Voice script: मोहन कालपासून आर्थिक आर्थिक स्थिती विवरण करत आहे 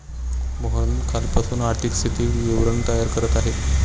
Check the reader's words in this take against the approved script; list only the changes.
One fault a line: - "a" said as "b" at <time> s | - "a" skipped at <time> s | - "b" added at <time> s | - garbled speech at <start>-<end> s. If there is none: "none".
- "आर्थिक" skipped at 1.9 s
- "तयार" added at 2.9 s